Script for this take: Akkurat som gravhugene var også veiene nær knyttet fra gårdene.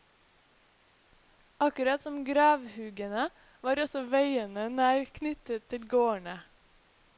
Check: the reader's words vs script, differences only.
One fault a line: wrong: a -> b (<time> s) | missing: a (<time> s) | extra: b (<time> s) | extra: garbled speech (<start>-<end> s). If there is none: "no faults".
wrong: fra -> til (5.7 s)